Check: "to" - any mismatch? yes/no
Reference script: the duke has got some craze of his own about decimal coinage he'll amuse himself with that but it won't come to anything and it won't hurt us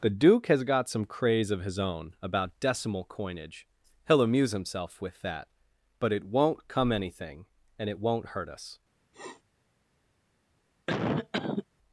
yes